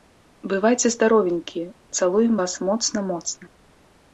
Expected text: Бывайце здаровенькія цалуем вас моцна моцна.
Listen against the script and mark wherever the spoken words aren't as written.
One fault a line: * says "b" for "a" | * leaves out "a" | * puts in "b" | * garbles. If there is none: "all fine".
all fine